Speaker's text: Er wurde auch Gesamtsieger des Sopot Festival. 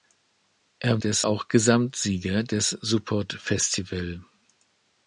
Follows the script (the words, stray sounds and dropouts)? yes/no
no